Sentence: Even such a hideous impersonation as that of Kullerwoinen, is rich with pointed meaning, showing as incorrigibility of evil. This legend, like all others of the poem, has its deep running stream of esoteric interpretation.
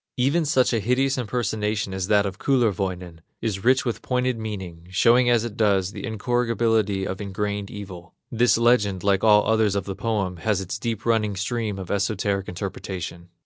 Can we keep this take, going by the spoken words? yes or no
no